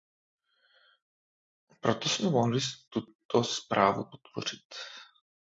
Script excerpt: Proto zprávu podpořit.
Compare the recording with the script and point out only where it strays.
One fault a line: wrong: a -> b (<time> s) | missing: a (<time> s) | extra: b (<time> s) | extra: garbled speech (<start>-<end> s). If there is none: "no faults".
extra: jsme mohli tuto (2.1 s)